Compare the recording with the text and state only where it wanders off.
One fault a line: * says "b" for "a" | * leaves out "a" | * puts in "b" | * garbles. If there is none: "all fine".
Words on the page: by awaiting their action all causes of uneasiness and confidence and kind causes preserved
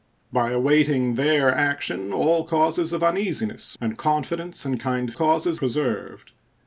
all fine